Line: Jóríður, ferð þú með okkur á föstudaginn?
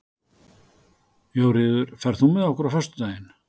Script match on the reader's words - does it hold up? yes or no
yes